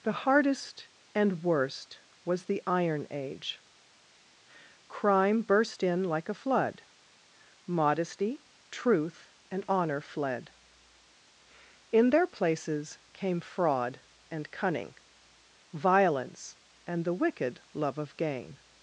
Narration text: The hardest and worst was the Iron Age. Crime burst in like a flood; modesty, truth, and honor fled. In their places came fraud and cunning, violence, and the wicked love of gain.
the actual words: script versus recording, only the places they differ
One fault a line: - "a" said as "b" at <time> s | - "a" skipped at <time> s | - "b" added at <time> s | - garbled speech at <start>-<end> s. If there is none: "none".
none